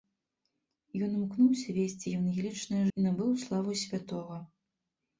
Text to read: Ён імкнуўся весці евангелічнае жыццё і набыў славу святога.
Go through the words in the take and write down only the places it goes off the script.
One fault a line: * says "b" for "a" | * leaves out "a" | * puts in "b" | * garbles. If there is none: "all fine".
* leaves out "жыццё"